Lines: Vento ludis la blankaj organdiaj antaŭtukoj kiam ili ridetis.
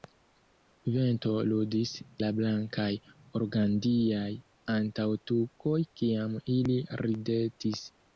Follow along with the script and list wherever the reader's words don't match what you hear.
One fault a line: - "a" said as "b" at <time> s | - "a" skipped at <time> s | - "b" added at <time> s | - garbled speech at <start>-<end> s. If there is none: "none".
none